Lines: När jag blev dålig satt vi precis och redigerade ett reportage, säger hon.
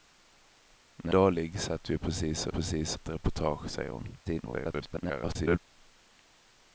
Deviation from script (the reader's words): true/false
true